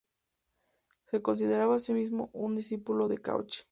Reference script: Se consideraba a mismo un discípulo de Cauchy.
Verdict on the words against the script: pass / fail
fail